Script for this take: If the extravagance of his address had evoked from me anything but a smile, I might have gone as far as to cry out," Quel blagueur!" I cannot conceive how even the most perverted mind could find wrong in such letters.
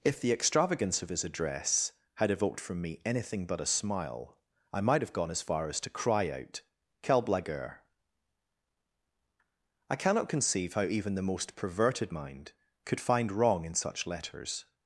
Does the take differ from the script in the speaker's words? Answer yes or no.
no